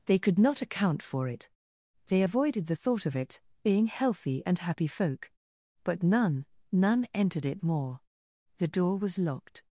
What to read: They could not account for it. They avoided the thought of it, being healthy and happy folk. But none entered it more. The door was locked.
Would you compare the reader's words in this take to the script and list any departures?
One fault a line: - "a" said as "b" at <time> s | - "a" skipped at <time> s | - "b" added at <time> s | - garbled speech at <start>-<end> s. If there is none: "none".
- "none" added at 6.7 s